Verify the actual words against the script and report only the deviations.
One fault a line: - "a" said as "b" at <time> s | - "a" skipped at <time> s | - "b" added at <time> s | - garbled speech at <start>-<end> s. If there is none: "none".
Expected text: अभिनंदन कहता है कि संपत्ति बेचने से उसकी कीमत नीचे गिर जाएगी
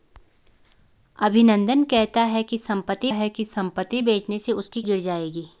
- "है कि संपत्ति" added at 3.1 s
- "कीमत नीचे" skipped at 4.8 s